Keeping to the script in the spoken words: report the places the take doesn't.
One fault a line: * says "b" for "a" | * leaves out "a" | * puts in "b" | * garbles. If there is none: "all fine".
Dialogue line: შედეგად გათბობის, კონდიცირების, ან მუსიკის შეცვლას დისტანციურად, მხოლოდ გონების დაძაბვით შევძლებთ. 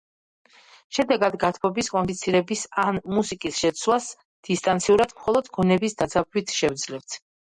all fine